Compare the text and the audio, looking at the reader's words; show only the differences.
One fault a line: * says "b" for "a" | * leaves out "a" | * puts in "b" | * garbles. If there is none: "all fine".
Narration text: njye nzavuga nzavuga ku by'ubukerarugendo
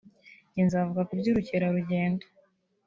* leaves out "nzavuga"